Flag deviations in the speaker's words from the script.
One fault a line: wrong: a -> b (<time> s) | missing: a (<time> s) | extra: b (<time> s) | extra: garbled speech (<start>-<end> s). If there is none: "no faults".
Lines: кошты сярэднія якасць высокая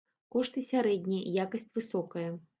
no faults